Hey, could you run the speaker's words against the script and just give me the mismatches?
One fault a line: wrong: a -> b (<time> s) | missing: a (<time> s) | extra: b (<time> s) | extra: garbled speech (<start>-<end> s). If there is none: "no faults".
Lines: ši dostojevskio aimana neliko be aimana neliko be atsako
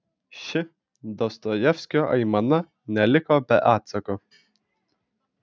missing: aimana neliko be (3.6 s)